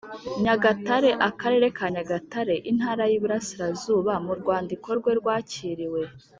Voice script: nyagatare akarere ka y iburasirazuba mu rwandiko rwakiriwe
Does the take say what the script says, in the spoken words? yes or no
no